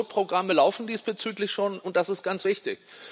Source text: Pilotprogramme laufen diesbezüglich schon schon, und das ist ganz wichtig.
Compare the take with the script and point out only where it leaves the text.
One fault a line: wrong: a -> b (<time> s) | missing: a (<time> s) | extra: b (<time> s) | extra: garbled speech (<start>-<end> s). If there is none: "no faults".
missing: schon (1.8 s)